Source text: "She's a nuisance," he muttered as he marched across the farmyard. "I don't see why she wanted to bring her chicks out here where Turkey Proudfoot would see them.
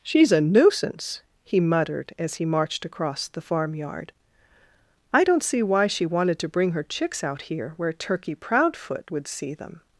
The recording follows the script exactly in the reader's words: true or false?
true